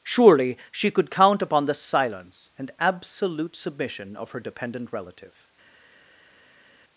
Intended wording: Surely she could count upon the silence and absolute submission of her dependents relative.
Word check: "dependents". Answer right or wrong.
wrong